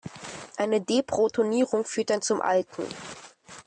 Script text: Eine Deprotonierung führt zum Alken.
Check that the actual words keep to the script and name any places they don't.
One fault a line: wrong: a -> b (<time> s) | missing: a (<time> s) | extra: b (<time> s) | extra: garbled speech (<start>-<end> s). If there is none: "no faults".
extra: dann (2.1 s)